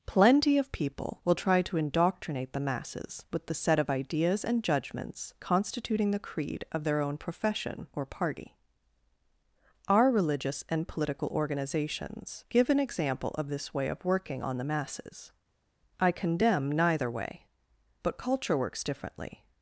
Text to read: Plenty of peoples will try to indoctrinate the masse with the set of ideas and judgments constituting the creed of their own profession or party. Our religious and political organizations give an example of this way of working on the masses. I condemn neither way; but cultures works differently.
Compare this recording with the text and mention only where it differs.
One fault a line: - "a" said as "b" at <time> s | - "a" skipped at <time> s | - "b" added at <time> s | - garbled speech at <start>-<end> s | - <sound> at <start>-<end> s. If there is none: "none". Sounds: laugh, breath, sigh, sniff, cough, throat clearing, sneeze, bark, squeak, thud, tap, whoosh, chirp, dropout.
- "peoples" said as "people" at 0.7 s
- "masse" said as "masses" at 2.6 s
- "cultures" said as "culture" at 18.2 s